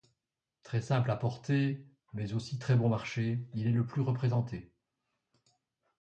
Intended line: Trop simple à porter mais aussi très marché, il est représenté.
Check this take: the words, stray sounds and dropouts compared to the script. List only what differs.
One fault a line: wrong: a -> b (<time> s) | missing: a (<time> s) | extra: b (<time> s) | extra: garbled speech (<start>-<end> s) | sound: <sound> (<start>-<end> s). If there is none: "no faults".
wrong: Trop -> Très (0.6 s)
extra: bon (2.8 s)
extra: le plus (3.7 s)